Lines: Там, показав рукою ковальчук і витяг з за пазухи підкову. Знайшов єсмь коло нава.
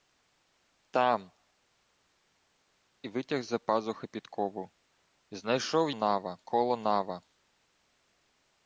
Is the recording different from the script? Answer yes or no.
yes